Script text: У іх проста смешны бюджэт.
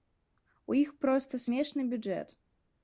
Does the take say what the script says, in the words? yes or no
yes